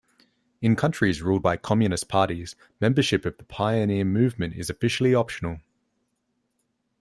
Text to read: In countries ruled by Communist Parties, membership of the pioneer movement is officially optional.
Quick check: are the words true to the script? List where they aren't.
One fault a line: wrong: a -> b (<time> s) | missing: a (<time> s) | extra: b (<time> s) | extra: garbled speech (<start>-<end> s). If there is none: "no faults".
no faults